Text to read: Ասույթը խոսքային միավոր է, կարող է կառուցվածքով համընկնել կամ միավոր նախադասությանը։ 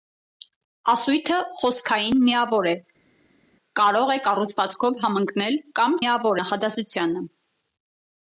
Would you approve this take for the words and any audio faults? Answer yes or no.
yes